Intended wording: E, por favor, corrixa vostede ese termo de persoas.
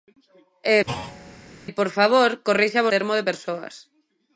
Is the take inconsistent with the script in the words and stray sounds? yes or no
yes